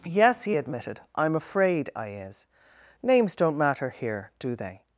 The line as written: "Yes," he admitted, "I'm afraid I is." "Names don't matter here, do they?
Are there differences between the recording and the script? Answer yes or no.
no